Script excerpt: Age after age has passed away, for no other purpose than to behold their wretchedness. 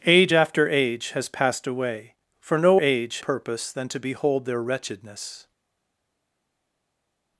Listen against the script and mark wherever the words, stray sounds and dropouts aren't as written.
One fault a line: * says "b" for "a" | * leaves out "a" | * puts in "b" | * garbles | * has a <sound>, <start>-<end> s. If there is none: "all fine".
* says "age" for "other"